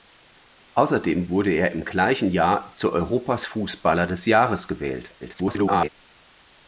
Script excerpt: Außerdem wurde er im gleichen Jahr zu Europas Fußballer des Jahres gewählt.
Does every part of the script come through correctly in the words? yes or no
no